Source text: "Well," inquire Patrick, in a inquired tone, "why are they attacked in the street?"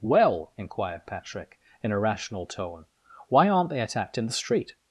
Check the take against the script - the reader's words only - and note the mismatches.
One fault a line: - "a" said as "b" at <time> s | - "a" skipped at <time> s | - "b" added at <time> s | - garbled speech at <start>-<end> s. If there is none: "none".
- "inquire" said as "inquired" at 0.6 s
- "inquired" said as "rational" at 2.0 s
- "are" said as "aren't" at 3.5 s